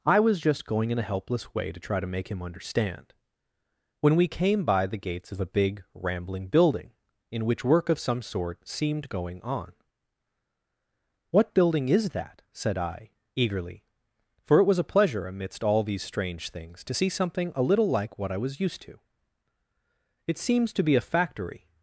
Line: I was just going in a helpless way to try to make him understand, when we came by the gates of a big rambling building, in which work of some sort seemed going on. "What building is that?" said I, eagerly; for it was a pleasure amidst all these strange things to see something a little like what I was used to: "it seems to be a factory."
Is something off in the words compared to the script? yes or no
no